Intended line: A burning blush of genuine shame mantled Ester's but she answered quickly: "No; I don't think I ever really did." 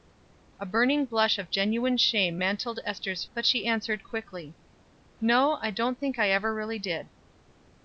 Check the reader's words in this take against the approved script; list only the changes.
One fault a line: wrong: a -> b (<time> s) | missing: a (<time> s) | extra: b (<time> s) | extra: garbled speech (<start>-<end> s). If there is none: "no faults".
no faults